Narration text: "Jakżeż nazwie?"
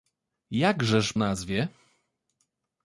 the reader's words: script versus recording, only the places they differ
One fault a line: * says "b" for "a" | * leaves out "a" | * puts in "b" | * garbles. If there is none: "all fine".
all fine